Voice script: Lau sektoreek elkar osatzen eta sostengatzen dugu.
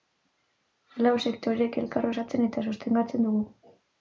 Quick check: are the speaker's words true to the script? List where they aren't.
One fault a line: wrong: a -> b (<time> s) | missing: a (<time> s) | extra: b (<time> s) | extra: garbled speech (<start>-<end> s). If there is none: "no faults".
no faults